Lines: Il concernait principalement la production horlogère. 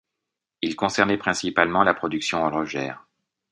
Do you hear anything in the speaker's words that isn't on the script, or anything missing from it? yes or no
no